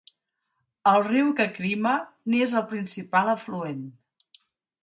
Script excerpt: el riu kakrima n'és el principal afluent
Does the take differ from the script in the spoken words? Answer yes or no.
no